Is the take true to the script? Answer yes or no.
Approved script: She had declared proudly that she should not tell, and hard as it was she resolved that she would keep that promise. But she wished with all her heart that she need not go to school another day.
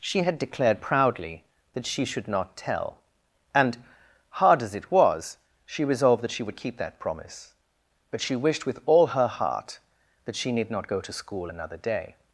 yes